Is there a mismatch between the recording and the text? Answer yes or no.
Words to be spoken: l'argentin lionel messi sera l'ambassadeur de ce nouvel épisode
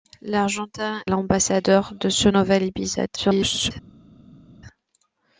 yes